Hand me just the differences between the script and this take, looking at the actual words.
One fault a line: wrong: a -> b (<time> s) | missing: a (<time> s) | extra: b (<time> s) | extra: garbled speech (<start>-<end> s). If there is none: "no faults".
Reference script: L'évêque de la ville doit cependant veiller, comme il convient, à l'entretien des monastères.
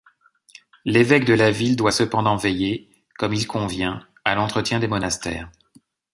no faults